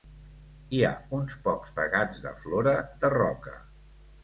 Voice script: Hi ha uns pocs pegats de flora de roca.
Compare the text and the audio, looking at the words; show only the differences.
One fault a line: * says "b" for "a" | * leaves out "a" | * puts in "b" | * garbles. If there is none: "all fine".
all fine